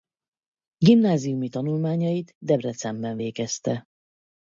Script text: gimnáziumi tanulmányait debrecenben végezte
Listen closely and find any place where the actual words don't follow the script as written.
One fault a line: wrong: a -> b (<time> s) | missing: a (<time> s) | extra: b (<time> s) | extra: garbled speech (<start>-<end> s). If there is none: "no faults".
no faults